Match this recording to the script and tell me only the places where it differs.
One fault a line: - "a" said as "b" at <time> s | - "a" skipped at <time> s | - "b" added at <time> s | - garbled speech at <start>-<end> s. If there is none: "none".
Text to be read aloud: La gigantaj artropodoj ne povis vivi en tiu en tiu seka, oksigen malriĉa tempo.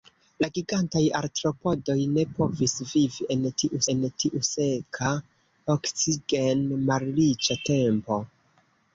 none